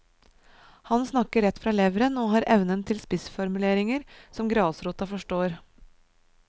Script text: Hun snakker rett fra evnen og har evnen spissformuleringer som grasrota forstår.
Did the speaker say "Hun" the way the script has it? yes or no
no